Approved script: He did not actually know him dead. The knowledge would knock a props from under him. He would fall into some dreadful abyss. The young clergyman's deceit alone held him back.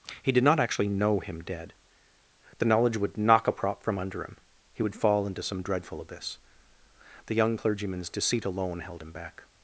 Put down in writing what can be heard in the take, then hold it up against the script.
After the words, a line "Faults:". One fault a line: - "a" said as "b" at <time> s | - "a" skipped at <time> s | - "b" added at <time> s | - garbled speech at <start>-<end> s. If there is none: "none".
He did not actually know him dead. The knowledge would knock a prop from under him. He would fall into some dreadful abyss. The young clergyman's deceit alone held him back.
Faults:
- "props" said as "prop" at 3.5 s